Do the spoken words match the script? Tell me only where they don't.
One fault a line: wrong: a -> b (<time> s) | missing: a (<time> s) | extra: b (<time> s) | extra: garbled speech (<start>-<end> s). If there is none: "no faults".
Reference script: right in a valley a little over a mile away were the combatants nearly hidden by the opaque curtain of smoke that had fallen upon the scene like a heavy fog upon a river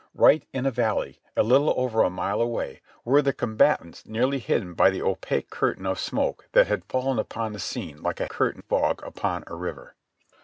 wrong: heavy -> curtain (8.3 s)